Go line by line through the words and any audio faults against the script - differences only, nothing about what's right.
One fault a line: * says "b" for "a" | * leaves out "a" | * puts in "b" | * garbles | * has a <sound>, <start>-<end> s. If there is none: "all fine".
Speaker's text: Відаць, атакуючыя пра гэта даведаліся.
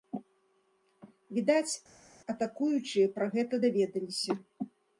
all fine